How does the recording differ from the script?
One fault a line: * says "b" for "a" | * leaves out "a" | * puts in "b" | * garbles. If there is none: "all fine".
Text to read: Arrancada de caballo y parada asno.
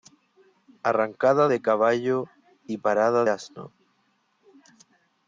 all fine